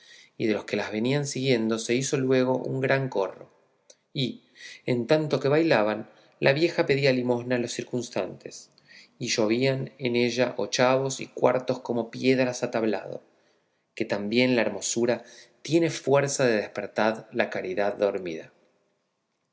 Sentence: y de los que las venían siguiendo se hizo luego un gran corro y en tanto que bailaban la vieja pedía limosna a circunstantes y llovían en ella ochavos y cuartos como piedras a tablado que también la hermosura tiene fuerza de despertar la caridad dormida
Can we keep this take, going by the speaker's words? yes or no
no